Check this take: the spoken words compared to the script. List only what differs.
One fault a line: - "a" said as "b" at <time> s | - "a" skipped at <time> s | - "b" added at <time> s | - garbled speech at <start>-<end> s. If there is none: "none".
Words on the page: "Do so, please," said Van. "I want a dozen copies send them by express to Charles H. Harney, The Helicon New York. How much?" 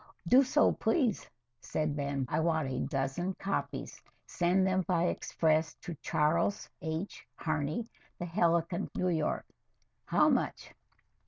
none